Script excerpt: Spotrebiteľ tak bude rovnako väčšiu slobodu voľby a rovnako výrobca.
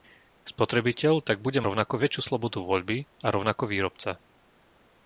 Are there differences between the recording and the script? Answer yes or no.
no